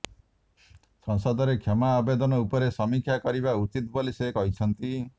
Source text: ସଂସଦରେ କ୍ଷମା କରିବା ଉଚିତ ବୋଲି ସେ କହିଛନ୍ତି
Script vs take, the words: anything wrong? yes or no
yes